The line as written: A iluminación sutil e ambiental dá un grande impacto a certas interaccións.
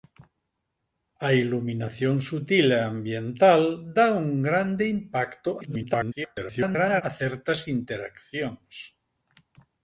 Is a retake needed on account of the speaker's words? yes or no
yes